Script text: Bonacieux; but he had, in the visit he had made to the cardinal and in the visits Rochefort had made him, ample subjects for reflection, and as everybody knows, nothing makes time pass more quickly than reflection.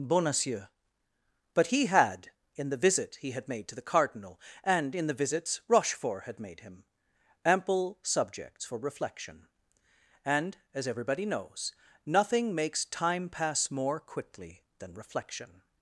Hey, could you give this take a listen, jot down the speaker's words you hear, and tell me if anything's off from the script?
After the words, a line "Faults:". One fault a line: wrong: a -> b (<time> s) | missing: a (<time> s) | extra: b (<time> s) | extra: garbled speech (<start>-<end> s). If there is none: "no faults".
Bonacieux; but he had, in the visit he had made to the cardinal and in the visits Rochefort had made him, ample subjects for reflection, and as everybody knows, nothing makes time pass more quickly than reflection.
Faults:
no faults